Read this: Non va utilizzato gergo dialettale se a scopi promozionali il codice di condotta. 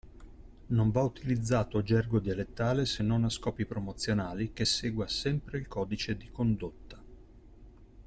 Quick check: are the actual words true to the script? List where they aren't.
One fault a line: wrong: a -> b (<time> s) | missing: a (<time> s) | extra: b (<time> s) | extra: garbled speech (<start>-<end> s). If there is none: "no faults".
extra: non (3.0 s)
extra: che segua sempre (4.5 s)